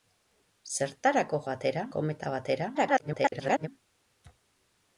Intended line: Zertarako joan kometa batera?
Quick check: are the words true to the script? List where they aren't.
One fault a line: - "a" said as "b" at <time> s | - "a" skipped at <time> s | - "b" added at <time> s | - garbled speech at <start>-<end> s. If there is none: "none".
- "joan" said as "batera" at 1.5 s
- garbled speech at 2.7-3.7 s